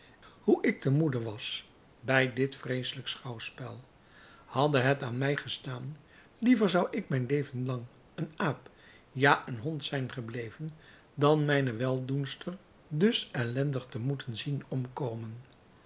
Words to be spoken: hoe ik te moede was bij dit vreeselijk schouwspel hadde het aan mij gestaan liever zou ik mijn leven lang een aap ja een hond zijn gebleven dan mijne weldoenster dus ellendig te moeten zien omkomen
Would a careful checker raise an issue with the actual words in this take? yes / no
no